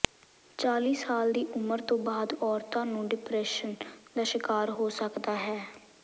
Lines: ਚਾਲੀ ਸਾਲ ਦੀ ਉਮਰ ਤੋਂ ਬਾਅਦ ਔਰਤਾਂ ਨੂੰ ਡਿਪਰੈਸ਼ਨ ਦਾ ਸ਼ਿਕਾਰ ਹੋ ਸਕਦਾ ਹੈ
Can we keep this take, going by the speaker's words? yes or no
yes